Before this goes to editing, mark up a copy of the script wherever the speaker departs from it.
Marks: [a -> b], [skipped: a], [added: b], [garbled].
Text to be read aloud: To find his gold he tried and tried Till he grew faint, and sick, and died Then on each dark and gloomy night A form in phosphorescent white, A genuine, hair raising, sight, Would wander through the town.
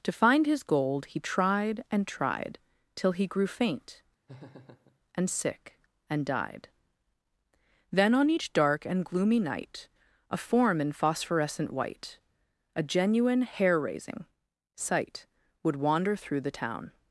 To find his gold he tried and tried Till he grew faint, and sick, and died Then on each dark and gloomy night A form in phosphorescent white, A genuine, hair raising, sight, Would wander through the town.